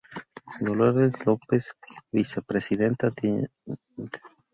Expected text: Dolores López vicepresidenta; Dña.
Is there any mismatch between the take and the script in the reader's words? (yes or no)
no